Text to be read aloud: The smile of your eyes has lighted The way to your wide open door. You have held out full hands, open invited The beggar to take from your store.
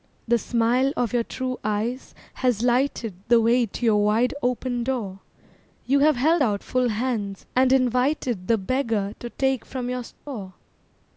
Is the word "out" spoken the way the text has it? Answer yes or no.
yes